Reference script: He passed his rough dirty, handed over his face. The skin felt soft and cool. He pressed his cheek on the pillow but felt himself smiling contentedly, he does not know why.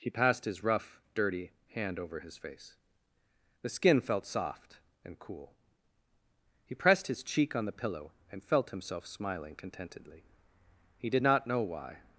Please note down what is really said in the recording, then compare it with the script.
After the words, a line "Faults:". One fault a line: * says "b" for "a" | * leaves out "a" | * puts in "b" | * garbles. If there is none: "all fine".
He passed his rough dirty, hand over his face. The skin felt soft and cool. He pressed his cheek on the pillow and felt himself smiling contentedly, he did not know why.
Faults:
* says "hand" for "handed"
* says "and" for "but"
* says "did" for "does"